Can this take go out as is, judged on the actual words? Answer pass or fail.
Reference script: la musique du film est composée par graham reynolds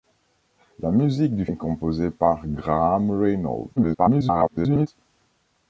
fail